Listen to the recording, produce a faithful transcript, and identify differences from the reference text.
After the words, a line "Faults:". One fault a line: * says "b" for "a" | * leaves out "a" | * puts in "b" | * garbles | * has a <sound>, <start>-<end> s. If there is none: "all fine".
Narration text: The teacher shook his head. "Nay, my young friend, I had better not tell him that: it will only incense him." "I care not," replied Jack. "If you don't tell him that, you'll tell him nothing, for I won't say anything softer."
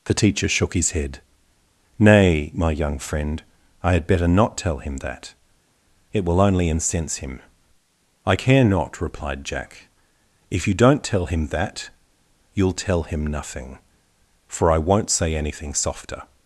The teacher shook his head. "Nay, my young friend, I had better not tell him that: it will only incense him." "I care not," replied Jack. "If you don't tell him that, you'll tell him nothing, for I won't say anything softer."
Faults:
all fine